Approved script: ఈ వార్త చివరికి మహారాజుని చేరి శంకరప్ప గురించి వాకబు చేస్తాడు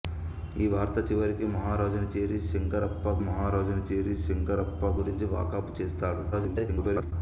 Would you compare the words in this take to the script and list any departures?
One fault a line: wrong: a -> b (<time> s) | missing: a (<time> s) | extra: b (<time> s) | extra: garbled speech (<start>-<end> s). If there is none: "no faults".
extra: మహారాజుని చేరి శంకరప్ప (3.2 s)
extra: garbled speech (6.3-7.1 s)